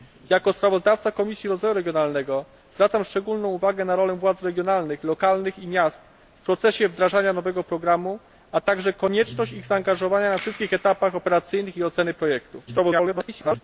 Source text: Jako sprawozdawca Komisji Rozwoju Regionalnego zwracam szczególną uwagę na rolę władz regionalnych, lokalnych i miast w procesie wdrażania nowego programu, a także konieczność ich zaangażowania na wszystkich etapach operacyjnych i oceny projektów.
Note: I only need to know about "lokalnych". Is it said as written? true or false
true